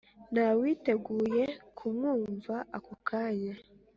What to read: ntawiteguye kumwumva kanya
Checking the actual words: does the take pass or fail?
fail